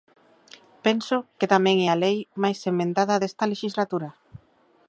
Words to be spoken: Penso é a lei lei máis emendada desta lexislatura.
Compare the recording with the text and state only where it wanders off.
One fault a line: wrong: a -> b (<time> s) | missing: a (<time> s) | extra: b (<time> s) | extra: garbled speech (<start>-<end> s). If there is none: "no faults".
extra: que tamén (1.4 s)
missing: lei (2.2 s)